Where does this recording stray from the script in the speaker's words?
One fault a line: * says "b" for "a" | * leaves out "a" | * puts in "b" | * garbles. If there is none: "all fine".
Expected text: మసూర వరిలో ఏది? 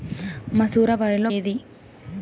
all fine